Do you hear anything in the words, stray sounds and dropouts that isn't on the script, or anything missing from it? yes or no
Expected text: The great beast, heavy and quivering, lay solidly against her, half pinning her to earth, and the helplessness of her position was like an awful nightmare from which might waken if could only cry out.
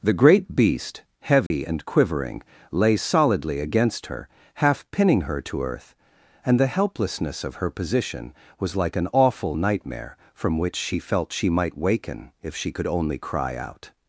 yes